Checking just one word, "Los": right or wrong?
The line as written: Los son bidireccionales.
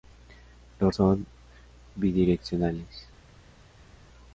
right